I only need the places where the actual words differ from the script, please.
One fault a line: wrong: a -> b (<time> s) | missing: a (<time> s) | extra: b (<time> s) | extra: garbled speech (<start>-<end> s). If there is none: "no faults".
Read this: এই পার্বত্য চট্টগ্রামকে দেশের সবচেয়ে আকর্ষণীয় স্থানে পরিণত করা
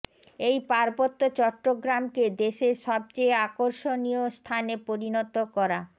no faults